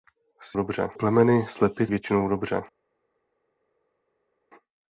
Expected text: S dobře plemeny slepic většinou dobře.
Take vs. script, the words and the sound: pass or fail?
pass